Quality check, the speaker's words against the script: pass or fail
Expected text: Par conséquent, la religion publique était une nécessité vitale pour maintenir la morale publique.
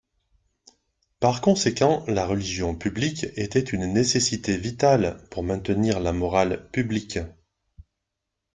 pass